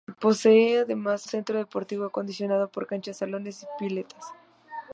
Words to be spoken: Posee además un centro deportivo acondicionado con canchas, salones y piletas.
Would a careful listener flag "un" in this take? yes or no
yes